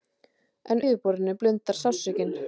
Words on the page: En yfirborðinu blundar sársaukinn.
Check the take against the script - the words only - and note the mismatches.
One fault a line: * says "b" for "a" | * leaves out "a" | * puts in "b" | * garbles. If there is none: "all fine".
all fine